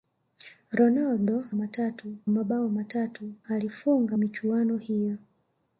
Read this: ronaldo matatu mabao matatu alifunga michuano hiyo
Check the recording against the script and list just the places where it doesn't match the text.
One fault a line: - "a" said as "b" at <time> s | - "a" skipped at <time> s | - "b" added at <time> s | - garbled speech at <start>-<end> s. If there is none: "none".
none